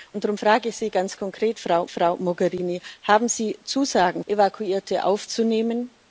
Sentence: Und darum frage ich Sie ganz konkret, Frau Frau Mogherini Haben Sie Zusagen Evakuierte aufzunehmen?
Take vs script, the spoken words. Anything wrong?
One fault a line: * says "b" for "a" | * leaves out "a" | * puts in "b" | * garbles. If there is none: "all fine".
all fine